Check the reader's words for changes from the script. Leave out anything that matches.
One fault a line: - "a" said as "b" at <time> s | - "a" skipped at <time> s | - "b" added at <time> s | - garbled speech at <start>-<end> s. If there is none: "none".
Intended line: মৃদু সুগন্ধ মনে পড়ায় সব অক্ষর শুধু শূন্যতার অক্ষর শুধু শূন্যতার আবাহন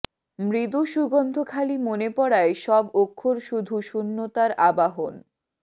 - "খালি" added at 1.5 s
- "অক্ষর শুধু শূন্যতার" skipped at 4.5 s